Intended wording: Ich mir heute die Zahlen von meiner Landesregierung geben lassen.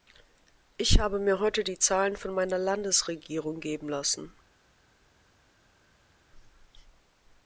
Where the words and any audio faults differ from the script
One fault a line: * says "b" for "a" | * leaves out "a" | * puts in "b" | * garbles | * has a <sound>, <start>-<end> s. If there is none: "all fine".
* puts in "habe"